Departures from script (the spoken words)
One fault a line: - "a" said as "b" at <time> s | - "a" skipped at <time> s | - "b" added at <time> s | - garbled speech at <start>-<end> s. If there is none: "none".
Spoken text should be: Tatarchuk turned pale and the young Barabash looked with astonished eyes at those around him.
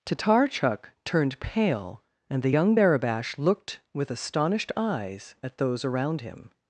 none